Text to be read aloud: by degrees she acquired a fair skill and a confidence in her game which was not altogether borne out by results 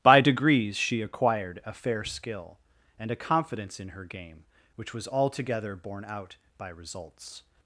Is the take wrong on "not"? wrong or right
wrong